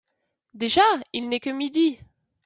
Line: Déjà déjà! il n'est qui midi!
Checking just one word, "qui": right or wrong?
wrong